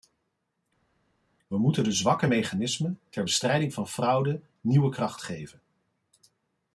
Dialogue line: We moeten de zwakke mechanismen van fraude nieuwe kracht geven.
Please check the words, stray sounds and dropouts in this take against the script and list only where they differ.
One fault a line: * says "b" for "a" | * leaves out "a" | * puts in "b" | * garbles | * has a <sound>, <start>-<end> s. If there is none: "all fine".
* puts in "ter bestrijding"